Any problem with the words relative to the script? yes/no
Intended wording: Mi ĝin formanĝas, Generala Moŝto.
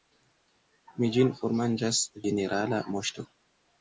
no